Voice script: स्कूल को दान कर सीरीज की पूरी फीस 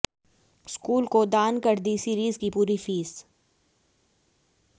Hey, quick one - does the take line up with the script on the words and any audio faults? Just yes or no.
no